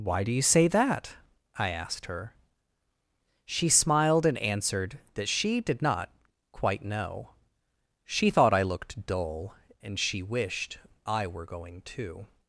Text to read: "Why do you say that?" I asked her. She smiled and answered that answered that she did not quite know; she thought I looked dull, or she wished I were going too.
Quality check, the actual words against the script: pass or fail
fail